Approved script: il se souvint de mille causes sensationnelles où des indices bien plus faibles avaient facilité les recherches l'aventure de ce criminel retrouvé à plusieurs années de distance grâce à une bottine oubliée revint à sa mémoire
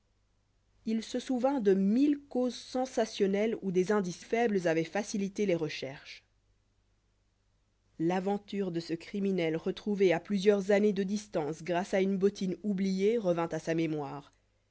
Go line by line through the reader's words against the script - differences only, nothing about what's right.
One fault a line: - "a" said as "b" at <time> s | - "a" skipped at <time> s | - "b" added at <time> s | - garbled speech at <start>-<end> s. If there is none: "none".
- "bien plus" skipped at 4.2 s